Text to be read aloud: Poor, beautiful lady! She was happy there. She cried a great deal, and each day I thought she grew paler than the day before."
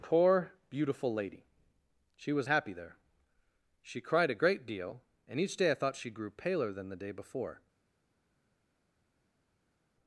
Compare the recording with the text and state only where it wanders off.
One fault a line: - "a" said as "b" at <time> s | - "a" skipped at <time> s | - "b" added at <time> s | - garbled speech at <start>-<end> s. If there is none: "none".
none